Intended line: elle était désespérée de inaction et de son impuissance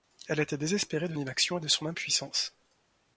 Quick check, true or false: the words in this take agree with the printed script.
true